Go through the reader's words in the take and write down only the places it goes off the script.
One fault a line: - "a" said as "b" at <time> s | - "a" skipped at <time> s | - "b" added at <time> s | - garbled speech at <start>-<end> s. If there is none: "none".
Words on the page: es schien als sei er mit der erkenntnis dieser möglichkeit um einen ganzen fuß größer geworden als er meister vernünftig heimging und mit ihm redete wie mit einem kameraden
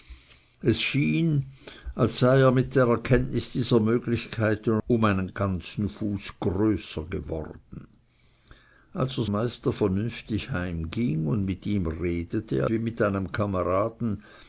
none